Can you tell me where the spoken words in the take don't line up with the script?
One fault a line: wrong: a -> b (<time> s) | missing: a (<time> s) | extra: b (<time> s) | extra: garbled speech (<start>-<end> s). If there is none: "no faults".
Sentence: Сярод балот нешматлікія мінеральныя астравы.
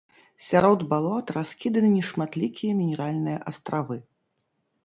extra: раскіданы (1.4 s)